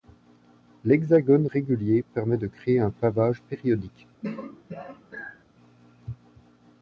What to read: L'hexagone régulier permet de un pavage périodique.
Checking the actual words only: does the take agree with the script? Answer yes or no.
no